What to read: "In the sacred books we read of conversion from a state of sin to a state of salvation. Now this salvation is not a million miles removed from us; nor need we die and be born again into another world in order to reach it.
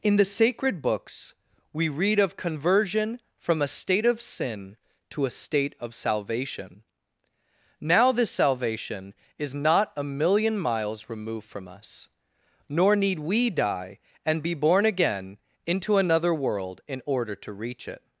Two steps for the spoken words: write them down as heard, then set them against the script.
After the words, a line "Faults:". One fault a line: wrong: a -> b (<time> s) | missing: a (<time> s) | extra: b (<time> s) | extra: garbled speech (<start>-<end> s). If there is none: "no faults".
"In the sacred books we read of conversion from a state of sin to a state of salvation. Now this salvation is not a million miles removed from us; nor need we die and be born again into another world in order to reach it.
Faults:
no faults